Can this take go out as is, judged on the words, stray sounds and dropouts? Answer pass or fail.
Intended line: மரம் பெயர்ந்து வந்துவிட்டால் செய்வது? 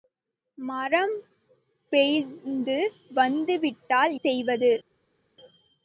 pass